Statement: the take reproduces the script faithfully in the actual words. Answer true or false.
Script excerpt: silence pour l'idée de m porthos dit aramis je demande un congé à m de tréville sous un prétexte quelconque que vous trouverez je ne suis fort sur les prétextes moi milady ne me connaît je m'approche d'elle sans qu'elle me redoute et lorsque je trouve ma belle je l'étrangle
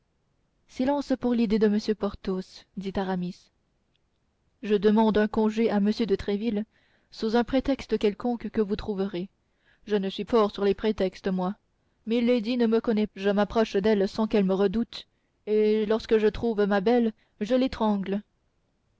true